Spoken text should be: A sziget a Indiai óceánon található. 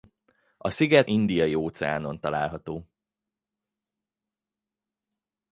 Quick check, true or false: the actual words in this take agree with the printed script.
false